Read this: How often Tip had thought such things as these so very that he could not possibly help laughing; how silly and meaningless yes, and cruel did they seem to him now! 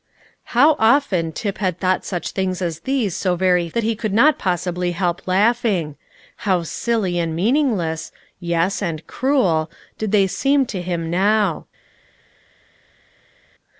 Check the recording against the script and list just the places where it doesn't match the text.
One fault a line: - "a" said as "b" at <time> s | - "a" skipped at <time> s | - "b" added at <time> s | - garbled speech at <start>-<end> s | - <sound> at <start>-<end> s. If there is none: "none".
none